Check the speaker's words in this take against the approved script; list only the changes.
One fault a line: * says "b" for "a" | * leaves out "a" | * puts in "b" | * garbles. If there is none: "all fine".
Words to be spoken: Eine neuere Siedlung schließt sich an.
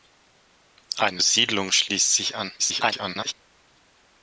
* leaves out "neuere"
* garbles